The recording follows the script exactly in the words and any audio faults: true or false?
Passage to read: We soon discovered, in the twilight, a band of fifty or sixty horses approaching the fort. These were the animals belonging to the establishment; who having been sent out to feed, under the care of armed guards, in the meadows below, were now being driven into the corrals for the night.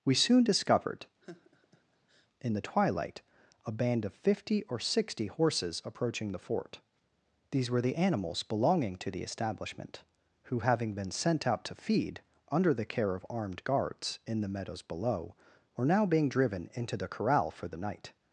false